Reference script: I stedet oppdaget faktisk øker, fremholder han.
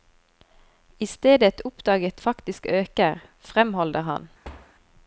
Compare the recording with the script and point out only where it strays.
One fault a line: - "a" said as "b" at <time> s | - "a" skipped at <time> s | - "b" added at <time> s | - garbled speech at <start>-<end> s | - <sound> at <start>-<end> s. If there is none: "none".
- thud at 4.4-4.7 s